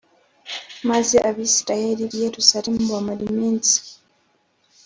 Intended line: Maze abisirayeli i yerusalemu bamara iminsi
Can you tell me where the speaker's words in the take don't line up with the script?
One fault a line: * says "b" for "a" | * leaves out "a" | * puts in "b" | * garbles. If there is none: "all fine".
all fine